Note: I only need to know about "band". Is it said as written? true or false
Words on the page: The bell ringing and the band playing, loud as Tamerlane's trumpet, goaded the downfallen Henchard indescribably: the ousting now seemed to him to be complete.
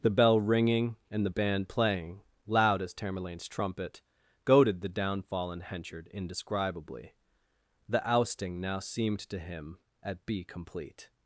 true